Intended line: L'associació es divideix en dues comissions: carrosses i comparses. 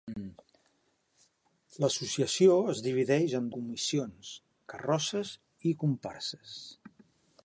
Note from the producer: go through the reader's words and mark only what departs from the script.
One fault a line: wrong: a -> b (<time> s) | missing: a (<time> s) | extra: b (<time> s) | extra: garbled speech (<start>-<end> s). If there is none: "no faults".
missing: dues (3.5 s)